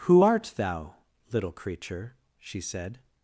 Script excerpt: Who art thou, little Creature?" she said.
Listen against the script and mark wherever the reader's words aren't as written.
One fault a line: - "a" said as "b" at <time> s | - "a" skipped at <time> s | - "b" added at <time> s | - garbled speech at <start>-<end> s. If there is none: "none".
none